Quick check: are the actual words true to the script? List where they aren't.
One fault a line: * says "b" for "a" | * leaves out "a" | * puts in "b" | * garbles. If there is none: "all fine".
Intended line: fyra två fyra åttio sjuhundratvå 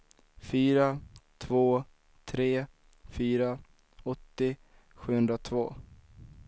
* puts in "tre"